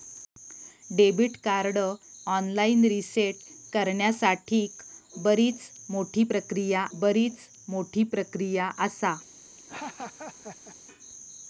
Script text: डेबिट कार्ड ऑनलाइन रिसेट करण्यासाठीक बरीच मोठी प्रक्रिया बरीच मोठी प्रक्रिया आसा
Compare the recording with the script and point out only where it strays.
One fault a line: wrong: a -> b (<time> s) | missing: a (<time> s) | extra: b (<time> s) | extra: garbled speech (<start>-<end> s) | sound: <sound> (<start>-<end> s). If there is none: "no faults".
sound: laugh (9.6-10.8 s)